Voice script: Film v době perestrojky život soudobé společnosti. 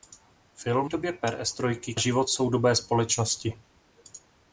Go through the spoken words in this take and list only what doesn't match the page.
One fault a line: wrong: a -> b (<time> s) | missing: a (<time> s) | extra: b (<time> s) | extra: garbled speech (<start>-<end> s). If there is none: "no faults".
no faults